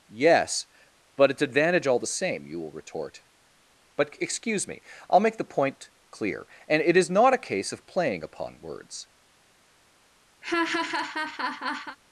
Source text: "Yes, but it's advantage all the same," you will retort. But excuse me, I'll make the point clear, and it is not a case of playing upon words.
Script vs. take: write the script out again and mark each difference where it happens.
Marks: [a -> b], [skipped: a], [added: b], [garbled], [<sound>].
"Yes, but it's advantage all the same," you will retort. But excuse me, I'll make the point clear, and it is not a case of playing upon words. [laugh]